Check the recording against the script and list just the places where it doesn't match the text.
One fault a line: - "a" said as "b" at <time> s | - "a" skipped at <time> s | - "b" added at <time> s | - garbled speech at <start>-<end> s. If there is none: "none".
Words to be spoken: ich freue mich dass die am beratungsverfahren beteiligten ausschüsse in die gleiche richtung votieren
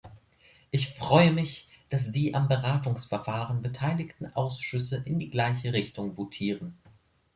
none